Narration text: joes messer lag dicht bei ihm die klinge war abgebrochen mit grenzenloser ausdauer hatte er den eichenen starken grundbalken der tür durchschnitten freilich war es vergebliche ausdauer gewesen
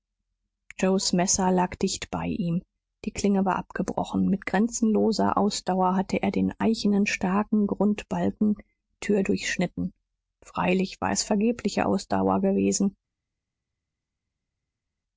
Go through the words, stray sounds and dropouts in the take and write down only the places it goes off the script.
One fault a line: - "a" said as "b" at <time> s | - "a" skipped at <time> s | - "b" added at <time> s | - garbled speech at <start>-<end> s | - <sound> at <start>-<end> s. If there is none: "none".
- "der" skipped at 8.6 s